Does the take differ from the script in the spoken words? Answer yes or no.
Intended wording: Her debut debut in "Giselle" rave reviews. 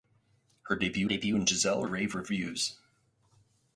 no